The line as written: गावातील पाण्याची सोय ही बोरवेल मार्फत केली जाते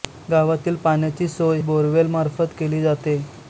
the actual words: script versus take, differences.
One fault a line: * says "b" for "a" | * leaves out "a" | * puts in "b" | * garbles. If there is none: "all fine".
* leaves out "ही"